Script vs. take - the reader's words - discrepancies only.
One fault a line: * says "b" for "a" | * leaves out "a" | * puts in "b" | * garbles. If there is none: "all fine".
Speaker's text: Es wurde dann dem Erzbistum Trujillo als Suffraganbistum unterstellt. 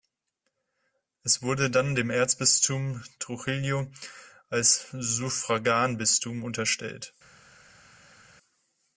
all fine